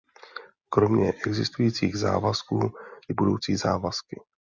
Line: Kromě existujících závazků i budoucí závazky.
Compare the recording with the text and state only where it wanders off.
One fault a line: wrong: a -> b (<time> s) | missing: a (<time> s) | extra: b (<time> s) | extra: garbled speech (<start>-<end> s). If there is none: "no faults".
no faults